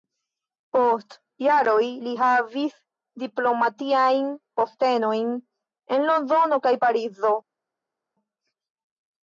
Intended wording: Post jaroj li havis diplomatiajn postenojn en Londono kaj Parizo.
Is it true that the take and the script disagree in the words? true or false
false